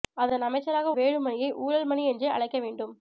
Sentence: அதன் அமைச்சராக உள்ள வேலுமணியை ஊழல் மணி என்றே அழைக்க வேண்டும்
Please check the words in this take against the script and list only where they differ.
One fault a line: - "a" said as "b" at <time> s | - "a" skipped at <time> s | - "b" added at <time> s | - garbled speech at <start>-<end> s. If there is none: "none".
- "உள்ள" skipped at 0.9 s